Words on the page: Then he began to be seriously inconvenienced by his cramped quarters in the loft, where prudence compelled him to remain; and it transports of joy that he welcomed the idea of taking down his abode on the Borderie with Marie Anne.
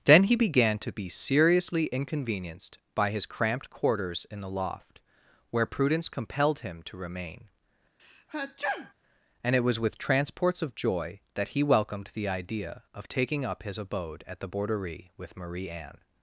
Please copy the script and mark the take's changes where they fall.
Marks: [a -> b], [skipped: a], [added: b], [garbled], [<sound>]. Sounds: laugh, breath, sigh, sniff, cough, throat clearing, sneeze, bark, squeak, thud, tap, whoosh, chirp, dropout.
Then he began to be seriously inconvenienced by his cramped quarters in the loft, where prudence compelled him to remain; [sneeze] and it [added: was with] transports of joy that he welcomed the idea of taking [down -> up] his abode [on -> at] the Borderie with Marie Anne.